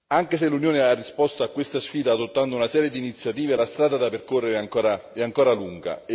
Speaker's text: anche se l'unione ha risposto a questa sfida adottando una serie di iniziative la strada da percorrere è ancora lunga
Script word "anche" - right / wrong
right